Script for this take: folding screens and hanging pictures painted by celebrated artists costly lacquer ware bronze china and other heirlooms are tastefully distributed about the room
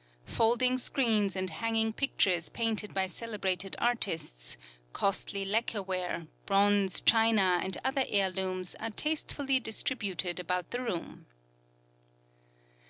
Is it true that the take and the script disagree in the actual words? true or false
false